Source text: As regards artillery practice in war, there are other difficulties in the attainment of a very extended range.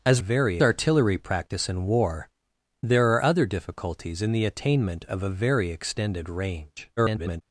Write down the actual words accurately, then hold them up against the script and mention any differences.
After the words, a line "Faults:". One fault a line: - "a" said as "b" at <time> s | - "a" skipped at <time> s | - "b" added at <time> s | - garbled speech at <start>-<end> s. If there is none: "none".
As very artillery practice in war, there are other difficulties in the attainment of a very extended range. [garbled]
Faults:
- "regards" said as "very" at 0.2 s
- garbled speech at 7.0-7.4 s